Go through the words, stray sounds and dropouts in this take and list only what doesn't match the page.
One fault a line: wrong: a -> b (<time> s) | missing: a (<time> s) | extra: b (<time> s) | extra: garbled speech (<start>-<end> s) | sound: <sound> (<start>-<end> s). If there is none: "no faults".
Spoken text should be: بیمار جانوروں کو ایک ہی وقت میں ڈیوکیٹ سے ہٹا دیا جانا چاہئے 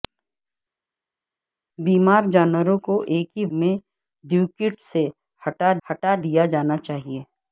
missing: وقت (3.4 s)
extra: ہٹا (5.9 s)